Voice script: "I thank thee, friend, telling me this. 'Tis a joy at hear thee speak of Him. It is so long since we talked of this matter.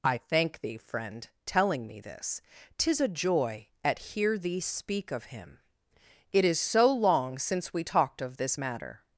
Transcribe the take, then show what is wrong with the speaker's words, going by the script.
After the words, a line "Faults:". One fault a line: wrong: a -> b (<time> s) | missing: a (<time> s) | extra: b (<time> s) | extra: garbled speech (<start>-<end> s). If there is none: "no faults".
"I thank thee, friend, telling me this. 'Tis a joy at hear thee speak of Him. It is so long since we talked of this matter.
Faults:
no faults